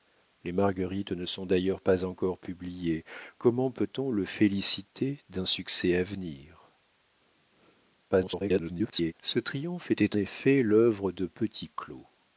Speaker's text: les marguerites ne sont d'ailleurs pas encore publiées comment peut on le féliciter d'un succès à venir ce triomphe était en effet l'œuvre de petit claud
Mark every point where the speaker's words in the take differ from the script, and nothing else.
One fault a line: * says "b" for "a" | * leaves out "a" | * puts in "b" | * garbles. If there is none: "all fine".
* garbles
* leaves out "en"